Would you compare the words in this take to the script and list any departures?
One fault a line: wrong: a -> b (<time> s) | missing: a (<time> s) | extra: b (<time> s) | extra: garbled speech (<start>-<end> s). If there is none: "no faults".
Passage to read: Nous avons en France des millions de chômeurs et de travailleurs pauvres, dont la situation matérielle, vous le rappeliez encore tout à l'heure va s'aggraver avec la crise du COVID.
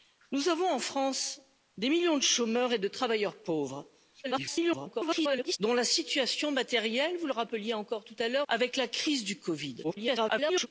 extra: garbled speech (4.2-5.6 s)
missing: va s'aggraver (8.4 s)
extra: garbled speech (9.8-10.7 s)